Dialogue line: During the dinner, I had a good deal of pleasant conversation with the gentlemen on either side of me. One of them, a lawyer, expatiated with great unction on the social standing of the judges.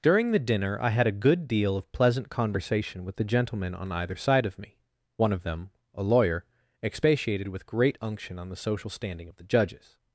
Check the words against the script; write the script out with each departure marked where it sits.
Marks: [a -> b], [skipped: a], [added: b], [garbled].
During the dinner, I had a good deal of pleasant conversation with the gentlemen on either side of me. One of them, a lawyer, expatiated with great unction on the social standing of the judges.